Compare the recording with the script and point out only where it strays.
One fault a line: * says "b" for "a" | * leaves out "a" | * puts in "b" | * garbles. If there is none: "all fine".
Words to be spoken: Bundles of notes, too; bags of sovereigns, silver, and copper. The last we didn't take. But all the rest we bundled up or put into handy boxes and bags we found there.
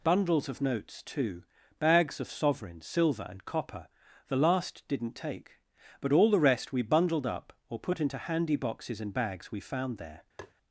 * leaves out "we"